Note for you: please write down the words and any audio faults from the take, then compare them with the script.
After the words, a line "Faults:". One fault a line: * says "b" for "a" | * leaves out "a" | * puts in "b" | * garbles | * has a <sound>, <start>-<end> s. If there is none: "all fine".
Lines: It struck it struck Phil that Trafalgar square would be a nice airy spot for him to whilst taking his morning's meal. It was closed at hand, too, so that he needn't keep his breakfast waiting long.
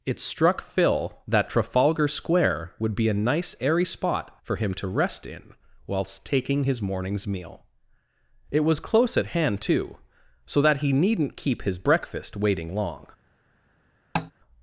It struck Phil that Trafalgar square would be a nice airy spot for him to rest in whilst taking his morning's meal. It was close at hand, too, so that he needn't keep his breakfast waiting long.
Faults:
* leaves out "it struck"
* puts in "rest in"
* says "close" for "closed"
* has a tap, 14.1-14.3 s